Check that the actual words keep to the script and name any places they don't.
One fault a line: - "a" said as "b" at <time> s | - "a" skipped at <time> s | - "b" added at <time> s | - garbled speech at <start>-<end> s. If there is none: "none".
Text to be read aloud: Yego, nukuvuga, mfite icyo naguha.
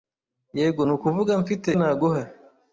- "icyo" skipped at 1.7 s